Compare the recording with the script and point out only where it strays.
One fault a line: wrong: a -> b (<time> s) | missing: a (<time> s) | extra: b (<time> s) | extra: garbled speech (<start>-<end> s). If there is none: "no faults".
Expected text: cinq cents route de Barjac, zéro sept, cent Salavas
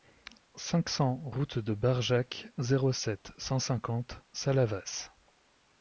extra: cinquante (3.6 s)